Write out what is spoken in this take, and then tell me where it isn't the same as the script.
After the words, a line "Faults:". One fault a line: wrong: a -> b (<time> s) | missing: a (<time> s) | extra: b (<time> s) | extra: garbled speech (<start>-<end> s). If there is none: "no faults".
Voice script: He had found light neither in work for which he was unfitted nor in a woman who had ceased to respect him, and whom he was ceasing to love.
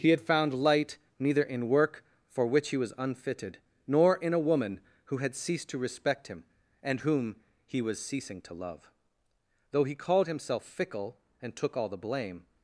He had found light neither in work for which he was unfitted nor in a woman who had ceased to respect him, and whom he was ceasing to love. Though he called himself fickle and took all the blame
Faults:
extra: Though he called himself fickle and took all the blame (9.7 s)